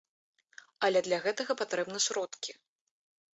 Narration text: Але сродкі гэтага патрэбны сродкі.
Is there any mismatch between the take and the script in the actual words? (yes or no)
yes